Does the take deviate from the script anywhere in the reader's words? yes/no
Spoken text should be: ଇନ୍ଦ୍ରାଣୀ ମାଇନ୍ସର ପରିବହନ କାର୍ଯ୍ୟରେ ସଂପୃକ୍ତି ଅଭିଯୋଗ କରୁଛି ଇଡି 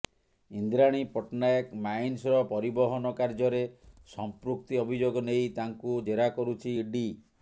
yes